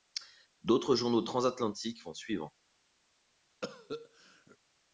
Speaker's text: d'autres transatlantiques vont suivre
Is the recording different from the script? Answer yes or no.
yes